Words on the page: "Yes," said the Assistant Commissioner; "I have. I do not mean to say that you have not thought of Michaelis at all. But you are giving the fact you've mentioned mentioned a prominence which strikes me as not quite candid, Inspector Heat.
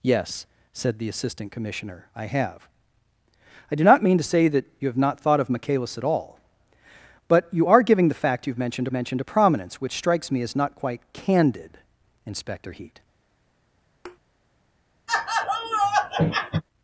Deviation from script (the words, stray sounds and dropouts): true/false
true